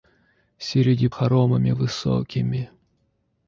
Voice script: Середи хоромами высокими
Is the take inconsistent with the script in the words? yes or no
no